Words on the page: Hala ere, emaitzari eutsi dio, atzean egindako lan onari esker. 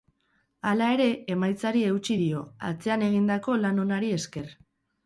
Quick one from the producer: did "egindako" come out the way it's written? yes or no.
yes